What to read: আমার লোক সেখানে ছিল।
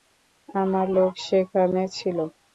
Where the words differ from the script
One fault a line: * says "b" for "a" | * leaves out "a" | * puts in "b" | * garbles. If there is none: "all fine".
all fine